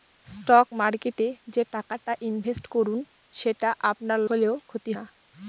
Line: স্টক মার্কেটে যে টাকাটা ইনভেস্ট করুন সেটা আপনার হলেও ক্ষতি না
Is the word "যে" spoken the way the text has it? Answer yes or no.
yes